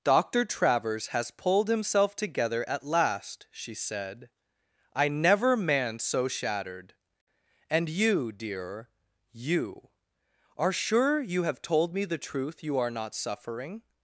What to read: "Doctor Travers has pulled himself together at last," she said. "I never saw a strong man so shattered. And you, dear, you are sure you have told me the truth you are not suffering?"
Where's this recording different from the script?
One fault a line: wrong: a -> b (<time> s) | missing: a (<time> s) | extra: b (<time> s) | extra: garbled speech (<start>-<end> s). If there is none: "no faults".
missing: saw a strong (5.5 s)